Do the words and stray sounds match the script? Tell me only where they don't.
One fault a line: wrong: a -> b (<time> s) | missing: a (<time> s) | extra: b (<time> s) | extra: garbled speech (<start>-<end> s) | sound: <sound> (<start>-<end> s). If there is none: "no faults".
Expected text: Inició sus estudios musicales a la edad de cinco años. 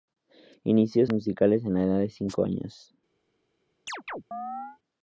missing: sus estudios (1.1 s)
sound: chirp (3.9-4.8 s)